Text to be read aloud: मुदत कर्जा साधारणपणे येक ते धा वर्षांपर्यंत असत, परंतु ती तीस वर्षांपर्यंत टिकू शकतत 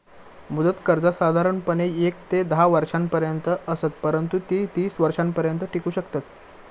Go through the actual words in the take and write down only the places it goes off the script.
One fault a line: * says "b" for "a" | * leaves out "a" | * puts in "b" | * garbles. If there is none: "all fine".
all fine